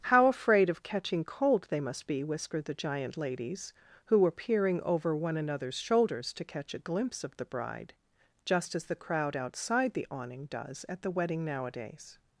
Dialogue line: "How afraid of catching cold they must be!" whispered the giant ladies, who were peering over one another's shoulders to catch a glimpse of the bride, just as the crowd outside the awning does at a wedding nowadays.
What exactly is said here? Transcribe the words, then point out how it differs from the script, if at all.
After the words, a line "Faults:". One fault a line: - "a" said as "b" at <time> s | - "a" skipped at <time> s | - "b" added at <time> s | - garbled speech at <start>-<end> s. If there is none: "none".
"How afraid of catching cold they must be!" whispered the giant ladies, who were peering over one another's shoulders to catch a glimpse of the bride, just as the crowd outside the awning does at the wedding nowadays.
Faults:
- "a" said as "the" at 11.0 s